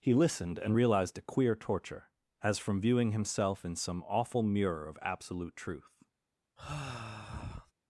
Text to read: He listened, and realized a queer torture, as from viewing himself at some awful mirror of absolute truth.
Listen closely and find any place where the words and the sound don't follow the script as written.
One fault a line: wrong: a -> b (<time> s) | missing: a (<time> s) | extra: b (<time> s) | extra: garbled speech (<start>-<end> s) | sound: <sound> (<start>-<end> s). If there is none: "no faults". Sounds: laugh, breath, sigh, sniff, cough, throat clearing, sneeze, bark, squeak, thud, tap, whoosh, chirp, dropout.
wrong: at -> in (3.7 s)
sound: sigh (6.6-7.7 s)